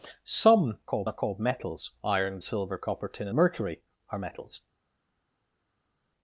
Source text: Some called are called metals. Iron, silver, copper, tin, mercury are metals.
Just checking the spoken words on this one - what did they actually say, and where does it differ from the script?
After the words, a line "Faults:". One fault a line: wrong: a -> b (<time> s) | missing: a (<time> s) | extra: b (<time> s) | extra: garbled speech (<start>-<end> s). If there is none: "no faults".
Some called are called metals. Iron, silver, copper, tin, mercury are metals.
Faults:
no faults